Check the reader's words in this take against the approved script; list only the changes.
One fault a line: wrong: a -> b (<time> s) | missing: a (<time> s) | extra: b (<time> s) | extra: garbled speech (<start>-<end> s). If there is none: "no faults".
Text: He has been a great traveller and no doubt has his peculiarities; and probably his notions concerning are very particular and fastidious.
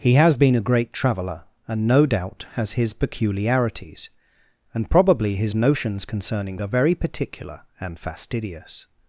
no faults